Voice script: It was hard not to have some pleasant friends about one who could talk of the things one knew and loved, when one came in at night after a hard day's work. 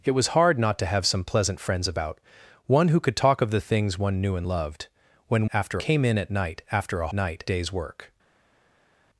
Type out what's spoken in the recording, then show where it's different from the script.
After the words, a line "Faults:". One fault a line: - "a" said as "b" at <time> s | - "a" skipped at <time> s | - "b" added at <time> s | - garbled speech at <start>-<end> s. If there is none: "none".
It was hard not to have some pleasant friends about one who could talk of the things one knew and loved, when after came in at night after a night day's work.
Faults:
- "one" said as "after" at 5.5 s
- "hard" said as "night" at 7.1 s